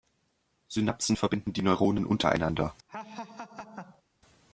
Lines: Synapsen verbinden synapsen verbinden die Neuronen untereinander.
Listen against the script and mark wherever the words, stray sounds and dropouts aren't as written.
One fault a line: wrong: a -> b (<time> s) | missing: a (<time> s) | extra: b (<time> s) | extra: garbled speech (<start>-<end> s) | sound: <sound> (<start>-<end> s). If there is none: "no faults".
missing: synapsen verbinden (1.5 s)
sound: laugh (2.9-4.0 s)